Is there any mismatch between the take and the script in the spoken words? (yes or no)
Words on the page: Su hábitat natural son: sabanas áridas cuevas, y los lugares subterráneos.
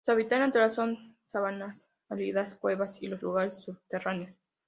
no